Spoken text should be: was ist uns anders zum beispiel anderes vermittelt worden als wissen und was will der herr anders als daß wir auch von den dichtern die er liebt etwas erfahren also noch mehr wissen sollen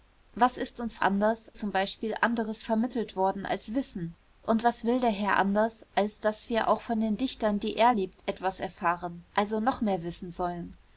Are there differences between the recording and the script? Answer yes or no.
no